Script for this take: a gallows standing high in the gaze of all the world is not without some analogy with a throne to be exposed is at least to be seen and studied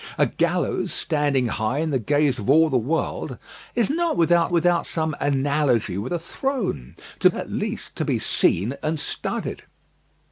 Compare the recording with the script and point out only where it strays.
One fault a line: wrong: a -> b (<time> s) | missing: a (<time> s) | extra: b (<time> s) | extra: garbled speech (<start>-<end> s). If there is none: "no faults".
extra: without (4.5 s)
missing: be exposed is (7.3 s)